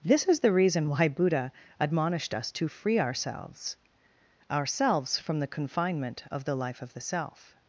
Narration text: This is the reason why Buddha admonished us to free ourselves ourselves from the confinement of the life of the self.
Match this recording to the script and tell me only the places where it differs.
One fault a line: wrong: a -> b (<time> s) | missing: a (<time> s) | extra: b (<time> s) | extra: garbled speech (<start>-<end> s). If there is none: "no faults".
no faults